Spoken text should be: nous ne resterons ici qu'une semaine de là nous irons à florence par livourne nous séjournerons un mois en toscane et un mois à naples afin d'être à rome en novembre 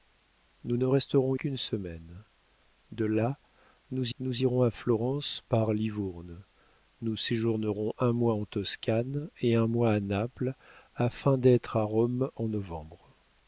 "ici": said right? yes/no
no